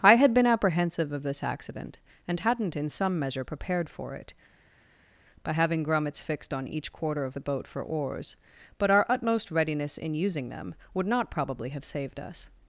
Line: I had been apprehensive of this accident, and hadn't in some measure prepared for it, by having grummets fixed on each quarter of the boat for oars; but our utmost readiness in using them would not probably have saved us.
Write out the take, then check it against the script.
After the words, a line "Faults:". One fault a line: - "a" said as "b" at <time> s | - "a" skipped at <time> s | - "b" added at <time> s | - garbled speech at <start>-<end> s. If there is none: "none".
I had been apprehensive of this accident, and hadn't in some measure prepared for it, by having grummets fixed on each quarter of the boat for oars; but our utmost readiness in using them would not probably have saved us.
Faults:
none